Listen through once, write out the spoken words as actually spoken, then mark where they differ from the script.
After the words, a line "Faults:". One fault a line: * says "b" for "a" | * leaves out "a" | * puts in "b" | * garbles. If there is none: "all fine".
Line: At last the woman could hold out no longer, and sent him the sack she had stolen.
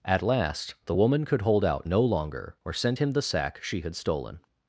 At last the woman could hold out no longer, or sent him the sack she had stolen.
Faults:
* says "or" for "and"